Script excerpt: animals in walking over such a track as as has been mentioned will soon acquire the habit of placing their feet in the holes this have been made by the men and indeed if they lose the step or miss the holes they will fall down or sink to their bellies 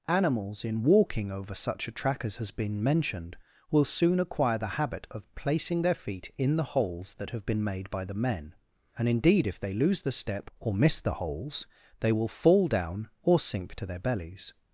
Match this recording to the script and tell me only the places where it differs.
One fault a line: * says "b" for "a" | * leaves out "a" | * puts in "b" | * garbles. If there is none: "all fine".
* leaves out "as"
* says "that" for "this"